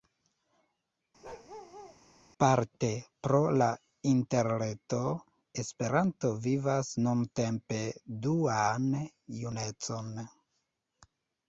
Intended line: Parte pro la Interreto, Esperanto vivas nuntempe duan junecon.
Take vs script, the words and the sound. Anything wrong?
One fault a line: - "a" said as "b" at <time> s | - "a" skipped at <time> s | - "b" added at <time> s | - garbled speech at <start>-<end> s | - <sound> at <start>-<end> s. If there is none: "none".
- bark at 1.2-2.0 s